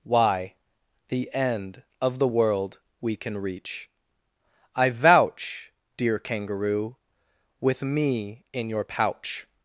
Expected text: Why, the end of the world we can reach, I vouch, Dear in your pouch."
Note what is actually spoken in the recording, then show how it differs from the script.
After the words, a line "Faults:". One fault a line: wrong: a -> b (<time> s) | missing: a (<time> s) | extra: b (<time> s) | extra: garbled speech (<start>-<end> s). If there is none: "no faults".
Why, the end of the world we can reach, I vouch, Dear kangaroo, with me in your pouch."
Faults:
extra: kangaroo with me (6.2 s)